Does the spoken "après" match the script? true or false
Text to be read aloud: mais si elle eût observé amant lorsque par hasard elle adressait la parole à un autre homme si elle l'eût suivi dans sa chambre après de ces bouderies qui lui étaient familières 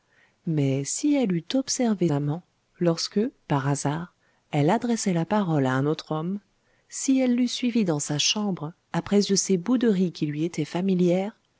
true